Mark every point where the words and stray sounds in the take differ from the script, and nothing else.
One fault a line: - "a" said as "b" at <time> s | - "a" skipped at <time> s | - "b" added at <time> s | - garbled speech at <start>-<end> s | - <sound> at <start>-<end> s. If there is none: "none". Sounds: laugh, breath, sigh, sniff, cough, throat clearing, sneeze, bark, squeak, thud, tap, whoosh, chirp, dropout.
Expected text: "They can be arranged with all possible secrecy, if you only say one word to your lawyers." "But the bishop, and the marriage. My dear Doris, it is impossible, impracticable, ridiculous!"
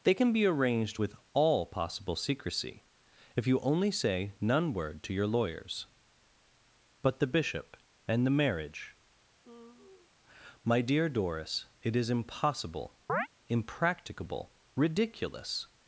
- "one" said as "none" at 4.4 s
- sigh at 9.4-10.1 s
- chirp at 13.1-13.3 s